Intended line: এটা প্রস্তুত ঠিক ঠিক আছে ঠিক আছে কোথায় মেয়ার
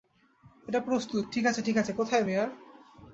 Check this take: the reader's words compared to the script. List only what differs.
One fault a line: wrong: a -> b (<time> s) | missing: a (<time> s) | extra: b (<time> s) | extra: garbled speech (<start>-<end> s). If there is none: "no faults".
missing: ঠিক (1.4 s)